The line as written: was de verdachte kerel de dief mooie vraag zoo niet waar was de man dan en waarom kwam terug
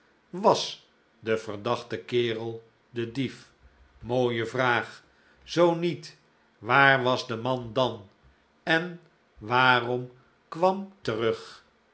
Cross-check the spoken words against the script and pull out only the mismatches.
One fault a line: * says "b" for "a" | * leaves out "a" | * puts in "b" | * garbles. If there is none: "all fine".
all fine